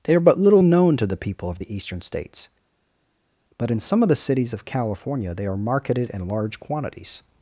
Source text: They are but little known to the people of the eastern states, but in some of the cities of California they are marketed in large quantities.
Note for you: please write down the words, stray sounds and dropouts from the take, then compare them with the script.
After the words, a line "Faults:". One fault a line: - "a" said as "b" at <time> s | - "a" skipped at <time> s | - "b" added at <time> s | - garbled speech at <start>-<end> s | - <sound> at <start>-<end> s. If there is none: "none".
They are but little known to the people of the eastern states, but in some of the cities of California they are marketed in large quantities.
Faults:
none